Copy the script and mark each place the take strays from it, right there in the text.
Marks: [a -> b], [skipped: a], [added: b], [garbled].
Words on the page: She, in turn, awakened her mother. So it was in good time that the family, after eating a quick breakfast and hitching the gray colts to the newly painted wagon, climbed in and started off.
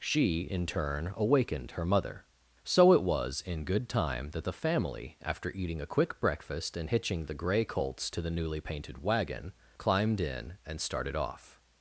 She, in turn, awakened her mother. So it was in good time that the family, after eating a quick breakfast and hitching the gray colts to the newly painted wagon, climbed in and started off.